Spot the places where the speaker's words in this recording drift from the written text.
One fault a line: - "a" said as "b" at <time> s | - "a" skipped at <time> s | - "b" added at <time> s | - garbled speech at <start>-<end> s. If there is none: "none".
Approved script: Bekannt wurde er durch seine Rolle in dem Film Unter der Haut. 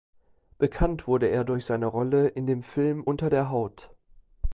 none